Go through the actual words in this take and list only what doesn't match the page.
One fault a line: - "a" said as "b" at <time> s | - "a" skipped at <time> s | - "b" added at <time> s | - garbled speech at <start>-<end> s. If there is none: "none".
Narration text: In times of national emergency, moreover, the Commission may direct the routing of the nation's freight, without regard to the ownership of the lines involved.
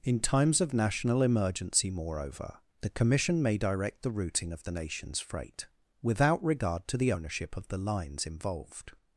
none